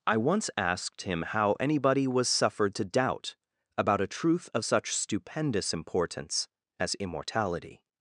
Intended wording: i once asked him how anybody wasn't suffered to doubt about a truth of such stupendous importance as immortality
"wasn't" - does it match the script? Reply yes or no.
no